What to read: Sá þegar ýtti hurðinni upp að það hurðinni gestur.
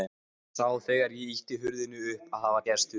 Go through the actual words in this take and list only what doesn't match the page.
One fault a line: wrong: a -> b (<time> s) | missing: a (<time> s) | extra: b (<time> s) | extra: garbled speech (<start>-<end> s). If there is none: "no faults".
extra: ég (1.1 s)
wrong: hurðinni -> var (2.6 s)